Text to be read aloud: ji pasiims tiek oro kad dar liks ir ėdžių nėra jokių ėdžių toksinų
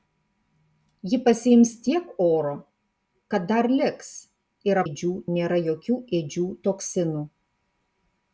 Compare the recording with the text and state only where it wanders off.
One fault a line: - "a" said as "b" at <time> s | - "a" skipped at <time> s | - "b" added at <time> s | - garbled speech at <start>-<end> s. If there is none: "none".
none